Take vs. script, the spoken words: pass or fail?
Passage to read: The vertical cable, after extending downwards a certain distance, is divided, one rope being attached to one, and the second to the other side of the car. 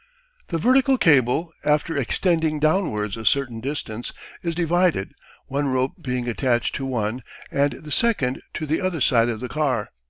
pass